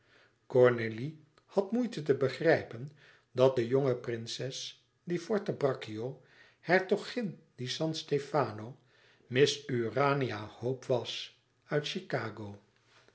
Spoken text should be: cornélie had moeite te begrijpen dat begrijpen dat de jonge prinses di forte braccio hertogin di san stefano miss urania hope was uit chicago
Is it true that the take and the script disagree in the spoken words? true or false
true